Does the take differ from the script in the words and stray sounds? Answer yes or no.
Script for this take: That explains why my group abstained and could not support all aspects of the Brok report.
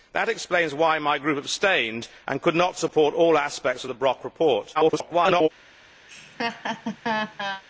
yes